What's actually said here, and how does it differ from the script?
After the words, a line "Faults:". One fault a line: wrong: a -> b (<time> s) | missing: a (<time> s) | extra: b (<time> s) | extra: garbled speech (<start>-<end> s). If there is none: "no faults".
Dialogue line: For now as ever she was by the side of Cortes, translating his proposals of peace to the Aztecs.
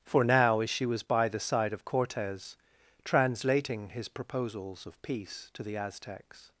For now as she was by the side of Cortes, translating his proposals of peace to the Aztecs.
Faults:
missing: ever (0.7 s)